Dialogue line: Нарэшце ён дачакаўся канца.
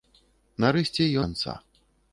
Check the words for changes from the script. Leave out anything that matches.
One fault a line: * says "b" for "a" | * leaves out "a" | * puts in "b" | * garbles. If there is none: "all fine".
* leaves out "ён дачакаўся"